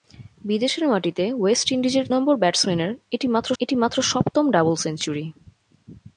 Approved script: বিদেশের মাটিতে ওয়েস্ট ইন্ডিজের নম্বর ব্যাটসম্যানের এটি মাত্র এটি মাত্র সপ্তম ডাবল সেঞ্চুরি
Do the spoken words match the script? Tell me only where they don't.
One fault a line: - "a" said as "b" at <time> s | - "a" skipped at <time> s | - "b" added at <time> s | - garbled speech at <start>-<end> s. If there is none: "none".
none